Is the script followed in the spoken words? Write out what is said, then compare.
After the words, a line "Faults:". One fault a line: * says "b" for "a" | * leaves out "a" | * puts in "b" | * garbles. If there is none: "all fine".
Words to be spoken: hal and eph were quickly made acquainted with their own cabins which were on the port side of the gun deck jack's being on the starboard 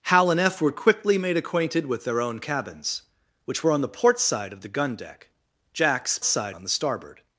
hal and eph were quickly made acquainted with their own cabins which were on the port side of the gun deck jack's side on the starboard
Faults:
* says "side" for "being"